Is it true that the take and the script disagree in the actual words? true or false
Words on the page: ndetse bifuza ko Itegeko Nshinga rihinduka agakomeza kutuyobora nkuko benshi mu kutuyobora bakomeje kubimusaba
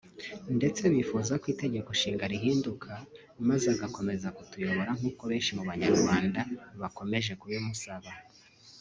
true